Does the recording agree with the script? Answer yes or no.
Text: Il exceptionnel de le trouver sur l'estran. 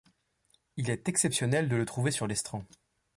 no